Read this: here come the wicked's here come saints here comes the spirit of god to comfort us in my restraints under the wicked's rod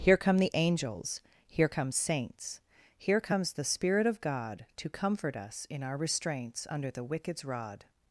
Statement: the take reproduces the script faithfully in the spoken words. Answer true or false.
false